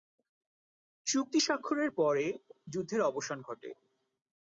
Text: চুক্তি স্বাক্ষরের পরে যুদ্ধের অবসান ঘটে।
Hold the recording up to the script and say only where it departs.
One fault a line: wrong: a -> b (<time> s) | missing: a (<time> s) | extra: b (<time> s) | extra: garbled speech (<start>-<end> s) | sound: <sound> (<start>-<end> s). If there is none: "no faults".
no faults